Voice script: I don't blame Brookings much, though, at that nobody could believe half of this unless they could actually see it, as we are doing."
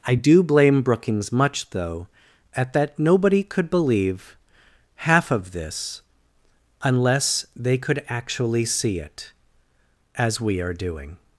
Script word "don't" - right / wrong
wrong